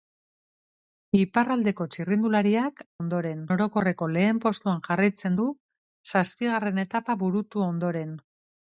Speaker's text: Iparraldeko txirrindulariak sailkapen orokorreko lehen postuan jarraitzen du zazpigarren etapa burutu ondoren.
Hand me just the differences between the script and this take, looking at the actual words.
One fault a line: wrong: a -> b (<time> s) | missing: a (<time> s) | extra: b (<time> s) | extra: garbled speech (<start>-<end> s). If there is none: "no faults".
wrong: sailkapen -> ondoren (3.0 s)